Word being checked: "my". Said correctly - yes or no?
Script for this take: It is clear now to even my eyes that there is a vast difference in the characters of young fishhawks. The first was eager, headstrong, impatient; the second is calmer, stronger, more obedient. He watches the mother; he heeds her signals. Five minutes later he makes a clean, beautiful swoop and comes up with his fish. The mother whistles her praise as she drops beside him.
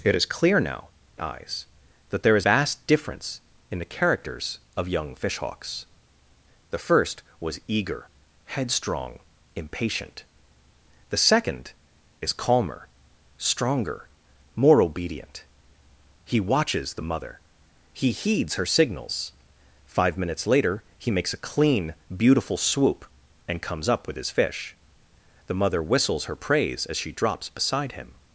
no